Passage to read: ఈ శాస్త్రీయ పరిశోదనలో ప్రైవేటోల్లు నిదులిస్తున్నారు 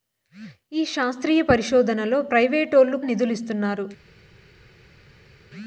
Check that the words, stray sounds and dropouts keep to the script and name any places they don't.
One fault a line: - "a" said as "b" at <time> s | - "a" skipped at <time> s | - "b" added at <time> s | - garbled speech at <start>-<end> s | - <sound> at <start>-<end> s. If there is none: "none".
none